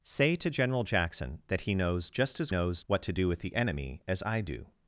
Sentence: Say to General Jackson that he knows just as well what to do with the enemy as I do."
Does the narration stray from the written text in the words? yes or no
yes